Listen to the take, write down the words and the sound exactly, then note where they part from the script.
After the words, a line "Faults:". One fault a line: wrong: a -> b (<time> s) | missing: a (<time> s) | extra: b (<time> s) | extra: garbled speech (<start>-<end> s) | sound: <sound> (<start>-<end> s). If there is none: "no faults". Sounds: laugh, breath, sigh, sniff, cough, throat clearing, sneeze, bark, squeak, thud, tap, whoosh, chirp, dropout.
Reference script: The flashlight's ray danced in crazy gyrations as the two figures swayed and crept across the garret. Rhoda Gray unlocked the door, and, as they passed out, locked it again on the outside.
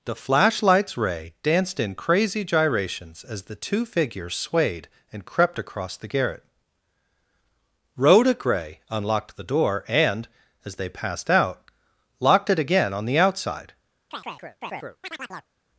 The flashlight's ray danced in crazy gyrations as the two figures swayed and crept across the garret. Rhoda Gray unlocked the door, and, as they passed out, locked it again on the outside.
Faults:
sound: chirp (14.1-15.5 s)